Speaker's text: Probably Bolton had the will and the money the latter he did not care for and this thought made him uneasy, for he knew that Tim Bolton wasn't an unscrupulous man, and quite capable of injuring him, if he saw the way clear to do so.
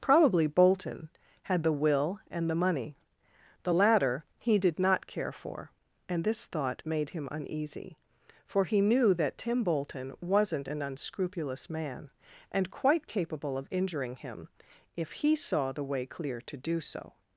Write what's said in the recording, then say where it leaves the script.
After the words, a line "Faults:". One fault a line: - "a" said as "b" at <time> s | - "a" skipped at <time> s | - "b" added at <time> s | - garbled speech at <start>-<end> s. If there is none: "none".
Probably Bolton had the will and the money the latter he did not care for and this thought made him uneasy, for he knew that Tim Bolton wasn't an unscrupulous man, and quite capable of injuring him, if he saw the way clear to do so.
Faults:
none